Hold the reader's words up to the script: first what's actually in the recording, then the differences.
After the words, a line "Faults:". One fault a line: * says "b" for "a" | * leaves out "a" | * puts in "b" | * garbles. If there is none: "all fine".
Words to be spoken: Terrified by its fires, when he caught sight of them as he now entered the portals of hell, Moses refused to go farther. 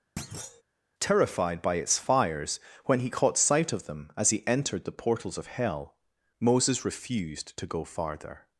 Terrified by its fires, when he caught sight of them as he entered the portals of hell, Moses refused to go farther.
Faults:
* leaves out "now"